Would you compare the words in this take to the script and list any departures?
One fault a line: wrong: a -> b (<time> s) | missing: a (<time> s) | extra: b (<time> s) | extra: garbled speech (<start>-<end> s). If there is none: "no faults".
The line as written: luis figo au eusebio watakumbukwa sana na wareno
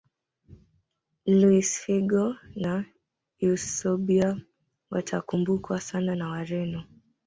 wrong: au -> na (2.5 s)